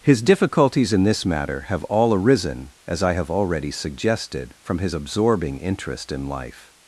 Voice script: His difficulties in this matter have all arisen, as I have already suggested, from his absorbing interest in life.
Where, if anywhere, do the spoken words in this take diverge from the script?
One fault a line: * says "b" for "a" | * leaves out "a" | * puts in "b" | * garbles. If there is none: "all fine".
all fine